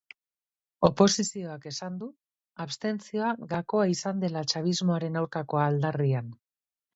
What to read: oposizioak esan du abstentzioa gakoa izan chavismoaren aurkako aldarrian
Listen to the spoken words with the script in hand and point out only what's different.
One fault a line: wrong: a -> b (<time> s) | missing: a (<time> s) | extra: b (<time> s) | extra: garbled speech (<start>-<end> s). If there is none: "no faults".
extra: dela (4.3 s)